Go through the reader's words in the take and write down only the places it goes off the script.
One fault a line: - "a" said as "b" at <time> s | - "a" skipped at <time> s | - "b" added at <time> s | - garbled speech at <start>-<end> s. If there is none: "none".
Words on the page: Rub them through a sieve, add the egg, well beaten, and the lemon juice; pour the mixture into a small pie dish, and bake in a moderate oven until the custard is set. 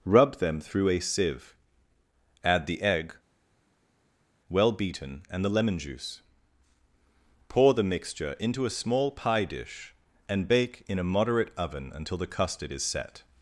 none